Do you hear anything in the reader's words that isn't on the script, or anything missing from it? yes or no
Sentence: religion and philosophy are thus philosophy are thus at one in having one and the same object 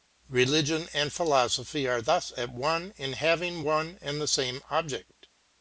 yes